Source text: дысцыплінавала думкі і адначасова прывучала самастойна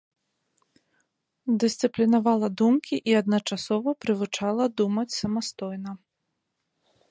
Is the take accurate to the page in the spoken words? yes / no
no